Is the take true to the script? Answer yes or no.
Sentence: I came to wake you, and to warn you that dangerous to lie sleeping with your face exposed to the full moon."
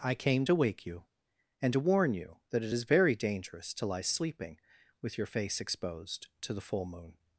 no